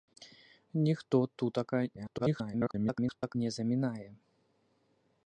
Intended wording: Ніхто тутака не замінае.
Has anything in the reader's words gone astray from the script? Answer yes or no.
yes